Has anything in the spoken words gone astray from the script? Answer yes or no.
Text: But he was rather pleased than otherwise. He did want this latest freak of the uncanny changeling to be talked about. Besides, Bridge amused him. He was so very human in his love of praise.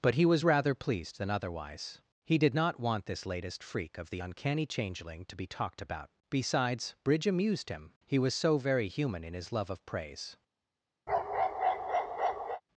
yes